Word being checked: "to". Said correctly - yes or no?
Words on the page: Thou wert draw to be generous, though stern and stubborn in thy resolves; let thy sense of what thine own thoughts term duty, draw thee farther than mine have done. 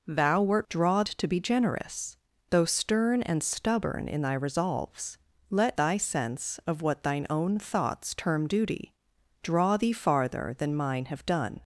yes